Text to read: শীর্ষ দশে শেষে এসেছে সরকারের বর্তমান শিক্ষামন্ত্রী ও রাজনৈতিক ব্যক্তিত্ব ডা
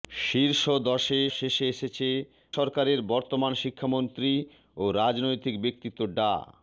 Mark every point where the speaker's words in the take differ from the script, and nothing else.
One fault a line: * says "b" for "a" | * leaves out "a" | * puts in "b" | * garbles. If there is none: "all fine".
all fine